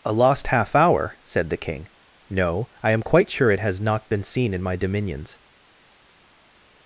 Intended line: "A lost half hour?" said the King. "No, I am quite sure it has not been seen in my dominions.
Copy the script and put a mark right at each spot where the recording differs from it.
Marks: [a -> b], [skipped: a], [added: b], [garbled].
"A lost half hour?" said the King. "No, I am quite sure it has not been seen in my dominions.